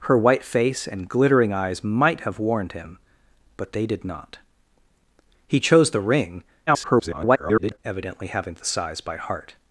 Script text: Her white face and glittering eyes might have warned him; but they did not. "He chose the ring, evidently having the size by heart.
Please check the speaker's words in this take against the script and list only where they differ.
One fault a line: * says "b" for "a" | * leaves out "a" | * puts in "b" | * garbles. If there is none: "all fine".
* garbles